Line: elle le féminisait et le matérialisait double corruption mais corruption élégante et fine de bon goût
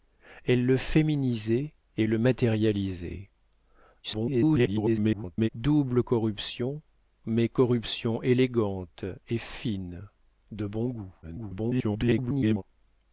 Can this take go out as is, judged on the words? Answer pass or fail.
fail